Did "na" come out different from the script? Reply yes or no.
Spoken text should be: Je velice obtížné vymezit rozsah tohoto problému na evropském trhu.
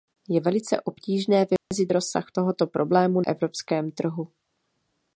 yes